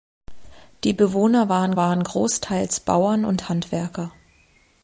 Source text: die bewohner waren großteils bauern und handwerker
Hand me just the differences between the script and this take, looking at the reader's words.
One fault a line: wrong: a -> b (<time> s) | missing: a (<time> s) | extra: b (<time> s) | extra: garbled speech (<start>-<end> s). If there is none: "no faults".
extra: waren (1.7 s)